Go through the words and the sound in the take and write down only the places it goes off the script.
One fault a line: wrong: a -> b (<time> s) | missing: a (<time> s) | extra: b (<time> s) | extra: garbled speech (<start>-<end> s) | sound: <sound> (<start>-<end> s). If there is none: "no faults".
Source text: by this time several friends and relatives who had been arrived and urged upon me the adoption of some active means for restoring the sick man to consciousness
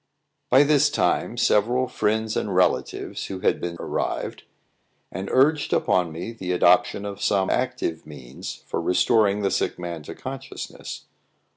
no faults